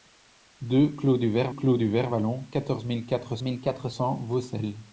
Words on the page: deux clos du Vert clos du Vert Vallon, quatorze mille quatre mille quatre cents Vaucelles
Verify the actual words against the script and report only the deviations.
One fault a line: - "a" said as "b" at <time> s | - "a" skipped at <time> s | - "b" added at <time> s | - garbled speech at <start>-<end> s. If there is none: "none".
none